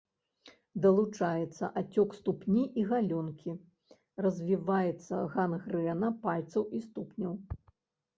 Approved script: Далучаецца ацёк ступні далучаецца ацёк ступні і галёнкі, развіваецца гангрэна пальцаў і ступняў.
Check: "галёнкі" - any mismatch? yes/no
no